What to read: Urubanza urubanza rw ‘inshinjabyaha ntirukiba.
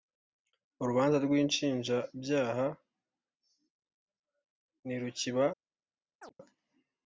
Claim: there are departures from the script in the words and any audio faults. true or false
true